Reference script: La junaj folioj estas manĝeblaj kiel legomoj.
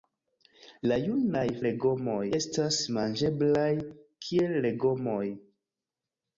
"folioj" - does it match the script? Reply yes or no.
no